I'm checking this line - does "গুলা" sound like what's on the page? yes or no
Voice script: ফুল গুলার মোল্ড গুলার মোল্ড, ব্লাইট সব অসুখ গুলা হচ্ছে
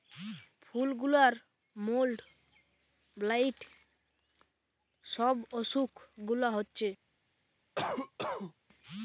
yes